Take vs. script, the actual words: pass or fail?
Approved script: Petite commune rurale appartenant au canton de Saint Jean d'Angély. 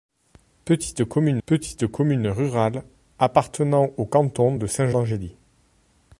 fail